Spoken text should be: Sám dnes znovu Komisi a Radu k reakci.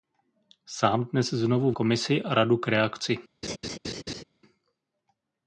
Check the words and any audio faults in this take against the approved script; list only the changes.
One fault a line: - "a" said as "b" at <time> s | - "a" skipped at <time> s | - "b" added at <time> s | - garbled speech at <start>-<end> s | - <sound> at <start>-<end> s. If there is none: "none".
- laugh at 3.4-4.2 s